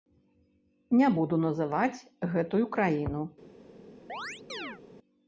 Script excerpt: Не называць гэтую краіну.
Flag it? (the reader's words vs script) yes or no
yes